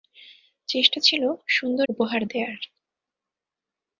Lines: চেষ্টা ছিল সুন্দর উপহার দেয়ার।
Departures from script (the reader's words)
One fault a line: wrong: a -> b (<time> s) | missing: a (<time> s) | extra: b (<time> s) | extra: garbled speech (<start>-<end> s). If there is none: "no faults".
no faults